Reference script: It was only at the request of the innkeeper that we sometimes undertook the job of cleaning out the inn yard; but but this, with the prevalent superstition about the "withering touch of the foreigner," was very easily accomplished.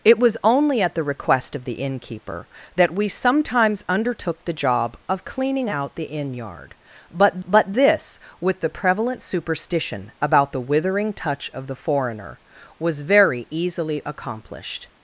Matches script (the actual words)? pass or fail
pass